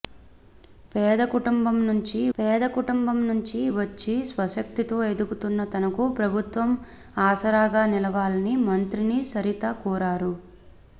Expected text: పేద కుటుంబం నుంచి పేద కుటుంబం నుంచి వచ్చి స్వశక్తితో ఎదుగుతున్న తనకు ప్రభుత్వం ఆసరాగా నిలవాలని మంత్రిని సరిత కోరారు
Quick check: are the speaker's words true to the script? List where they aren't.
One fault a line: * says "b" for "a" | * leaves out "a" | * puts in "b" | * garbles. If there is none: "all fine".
all fine